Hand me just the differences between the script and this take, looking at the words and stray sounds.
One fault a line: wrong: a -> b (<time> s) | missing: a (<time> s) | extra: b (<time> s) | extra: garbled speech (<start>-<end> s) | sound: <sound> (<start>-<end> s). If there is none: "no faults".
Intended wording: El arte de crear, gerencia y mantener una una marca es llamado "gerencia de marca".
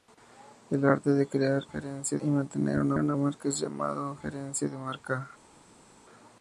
no faults